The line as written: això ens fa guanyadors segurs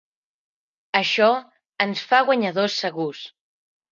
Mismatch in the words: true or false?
false